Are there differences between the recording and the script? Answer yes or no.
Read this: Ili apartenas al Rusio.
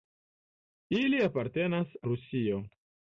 yes